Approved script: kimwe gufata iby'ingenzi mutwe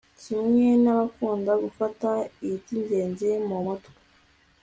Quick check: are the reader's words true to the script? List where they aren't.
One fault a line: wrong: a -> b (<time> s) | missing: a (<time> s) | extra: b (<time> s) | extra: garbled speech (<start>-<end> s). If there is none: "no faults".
extra: n'abakunda (0.8 s)
extra: mu (3.5 s)